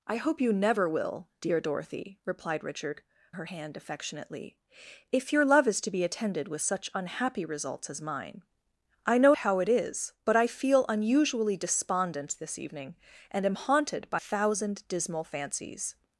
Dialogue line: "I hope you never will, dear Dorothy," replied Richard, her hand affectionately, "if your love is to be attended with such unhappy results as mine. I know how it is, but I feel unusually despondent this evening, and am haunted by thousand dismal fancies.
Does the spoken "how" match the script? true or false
true